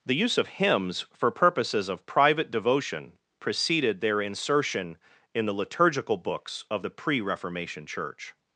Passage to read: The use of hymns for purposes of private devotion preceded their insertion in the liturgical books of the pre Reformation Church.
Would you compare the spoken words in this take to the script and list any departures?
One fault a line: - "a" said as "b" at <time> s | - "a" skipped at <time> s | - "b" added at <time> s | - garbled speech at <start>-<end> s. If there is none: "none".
none